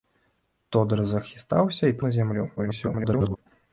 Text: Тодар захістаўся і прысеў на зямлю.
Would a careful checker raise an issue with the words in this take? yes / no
yes